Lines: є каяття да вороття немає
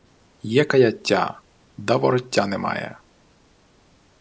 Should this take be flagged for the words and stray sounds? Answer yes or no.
no